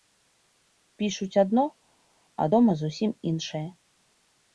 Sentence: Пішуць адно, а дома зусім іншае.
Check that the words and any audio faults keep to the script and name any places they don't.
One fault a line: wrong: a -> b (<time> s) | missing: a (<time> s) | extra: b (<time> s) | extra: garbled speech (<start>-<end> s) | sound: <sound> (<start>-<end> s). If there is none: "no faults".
no faults